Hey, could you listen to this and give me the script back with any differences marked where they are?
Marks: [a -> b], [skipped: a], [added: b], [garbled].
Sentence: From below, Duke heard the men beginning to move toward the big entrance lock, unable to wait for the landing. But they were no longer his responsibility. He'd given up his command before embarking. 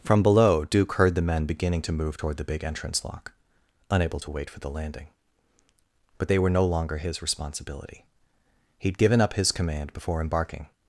From below, Duke heard the men beginning to move toward the big entrance lock, unable to wait for the landing. But they were no longer his responsibility. He'd given up his command before embarking.